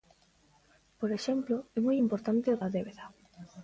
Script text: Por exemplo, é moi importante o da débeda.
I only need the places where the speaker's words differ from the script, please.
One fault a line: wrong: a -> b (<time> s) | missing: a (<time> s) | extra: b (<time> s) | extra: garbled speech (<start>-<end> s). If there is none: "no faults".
no faults